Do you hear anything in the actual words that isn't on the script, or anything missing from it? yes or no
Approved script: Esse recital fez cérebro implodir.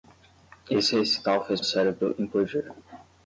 no